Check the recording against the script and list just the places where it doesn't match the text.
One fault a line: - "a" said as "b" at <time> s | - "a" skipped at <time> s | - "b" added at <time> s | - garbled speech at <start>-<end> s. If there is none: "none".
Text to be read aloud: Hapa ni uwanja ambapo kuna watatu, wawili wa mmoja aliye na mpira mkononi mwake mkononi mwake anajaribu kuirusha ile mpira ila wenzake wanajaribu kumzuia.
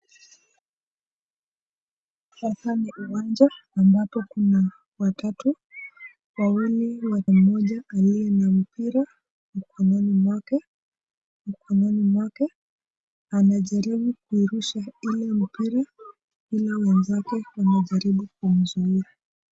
none